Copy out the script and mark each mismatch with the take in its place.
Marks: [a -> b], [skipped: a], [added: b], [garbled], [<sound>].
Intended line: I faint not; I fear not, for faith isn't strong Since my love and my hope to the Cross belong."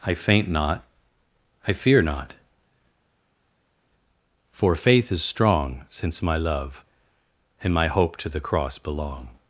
I faint not; I fear not, for faith [isn't -> is] strong Since my love and my hope to the Cross belong."